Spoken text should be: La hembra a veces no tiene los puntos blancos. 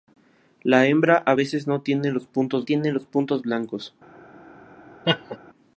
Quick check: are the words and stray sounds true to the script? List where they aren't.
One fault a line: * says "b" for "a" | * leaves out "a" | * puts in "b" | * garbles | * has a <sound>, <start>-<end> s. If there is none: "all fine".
* puts in "tiene los puntos"
* has a laugh, 5.0-5.4 s